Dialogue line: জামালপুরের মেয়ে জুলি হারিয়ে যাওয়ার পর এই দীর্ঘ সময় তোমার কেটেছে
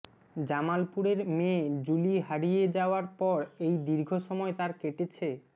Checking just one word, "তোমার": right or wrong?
wrong